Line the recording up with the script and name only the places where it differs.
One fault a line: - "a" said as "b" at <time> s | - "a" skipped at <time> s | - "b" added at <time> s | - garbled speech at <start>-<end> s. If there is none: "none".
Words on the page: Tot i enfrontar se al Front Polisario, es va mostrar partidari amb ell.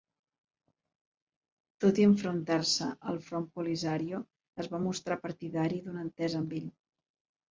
- "d'una entesa" added at 5.9 s